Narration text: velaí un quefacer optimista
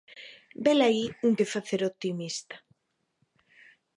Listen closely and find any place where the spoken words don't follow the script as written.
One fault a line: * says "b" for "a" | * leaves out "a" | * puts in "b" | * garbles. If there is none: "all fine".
all fine